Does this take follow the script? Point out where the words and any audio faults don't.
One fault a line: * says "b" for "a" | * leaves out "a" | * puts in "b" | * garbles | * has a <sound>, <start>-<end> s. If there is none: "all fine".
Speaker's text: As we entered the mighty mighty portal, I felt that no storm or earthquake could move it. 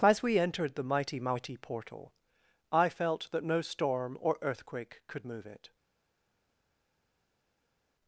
all fine